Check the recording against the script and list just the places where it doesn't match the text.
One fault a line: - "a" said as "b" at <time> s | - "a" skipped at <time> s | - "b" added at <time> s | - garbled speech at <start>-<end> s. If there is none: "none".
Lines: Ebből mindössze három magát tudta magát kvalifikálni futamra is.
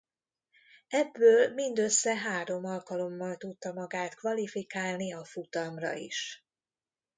- "magát" said as "alkalommal" at 2.6 s
- "a" added at 5.1 s